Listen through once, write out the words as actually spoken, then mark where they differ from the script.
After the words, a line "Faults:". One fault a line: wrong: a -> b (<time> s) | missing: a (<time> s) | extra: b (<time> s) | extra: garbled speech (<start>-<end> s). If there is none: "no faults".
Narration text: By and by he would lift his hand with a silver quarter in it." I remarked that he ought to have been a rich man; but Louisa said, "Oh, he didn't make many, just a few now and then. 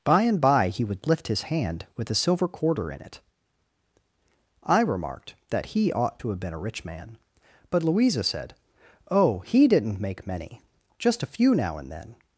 By and by he would lift his hand with a silver quarter in it." I remarked that he ought to have been a rich man; but Louisa said, "Oh, he didn't make many, just a few now and then.
Faults:
no faults